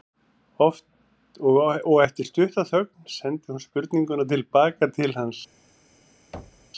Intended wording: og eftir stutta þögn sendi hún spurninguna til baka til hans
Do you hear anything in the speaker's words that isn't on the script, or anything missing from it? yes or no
no